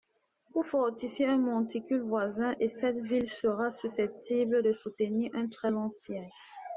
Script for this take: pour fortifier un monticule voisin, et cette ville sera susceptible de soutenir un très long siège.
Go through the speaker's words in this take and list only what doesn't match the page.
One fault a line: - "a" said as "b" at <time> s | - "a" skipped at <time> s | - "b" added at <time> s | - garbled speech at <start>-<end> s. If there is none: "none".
none